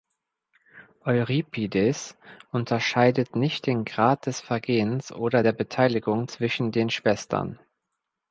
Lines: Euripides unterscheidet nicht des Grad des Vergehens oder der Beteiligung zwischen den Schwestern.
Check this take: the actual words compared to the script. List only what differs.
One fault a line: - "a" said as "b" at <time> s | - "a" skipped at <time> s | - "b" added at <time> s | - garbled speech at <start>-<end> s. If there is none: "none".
- "des" said as "den" at 3.7 s